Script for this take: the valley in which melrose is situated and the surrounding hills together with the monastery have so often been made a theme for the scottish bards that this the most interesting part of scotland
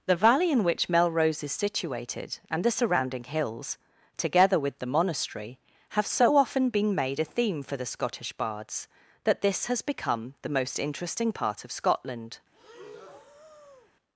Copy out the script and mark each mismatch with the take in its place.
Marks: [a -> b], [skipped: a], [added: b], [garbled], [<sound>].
the valley in which melrose is situated and the surrounding hills together with the monastery have so often been made a theme for the scottish bards that this [added: has become] the most interesting part of scotland [breath]